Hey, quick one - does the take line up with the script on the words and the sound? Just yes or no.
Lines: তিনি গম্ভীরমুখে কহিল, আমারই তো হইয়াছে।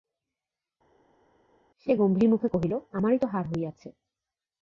no